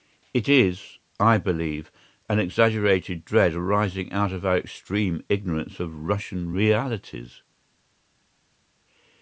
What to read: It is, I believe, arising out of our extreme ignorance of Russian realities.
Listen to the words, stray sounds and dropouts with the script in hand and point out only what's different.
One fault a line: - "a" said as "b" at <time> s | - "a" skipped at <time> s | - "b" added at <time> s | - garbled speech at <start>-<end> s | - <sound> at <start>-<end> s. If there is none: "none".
- "an exaggerated dread" added at 2.3 s